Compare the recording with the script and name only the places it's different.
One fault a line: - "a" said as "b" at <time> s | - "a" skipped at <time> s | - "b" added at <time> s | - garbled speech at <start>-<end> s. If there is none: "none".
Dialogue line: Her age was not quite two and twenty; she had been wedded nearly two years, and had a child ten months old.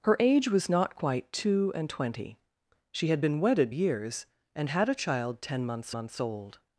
- "nearly two" skipped at 3.7 s
- "months" added at 5.9 s